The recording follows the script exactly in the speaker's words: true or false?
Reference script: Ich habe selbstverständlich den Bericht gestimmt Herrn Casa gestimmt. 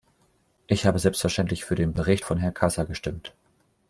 false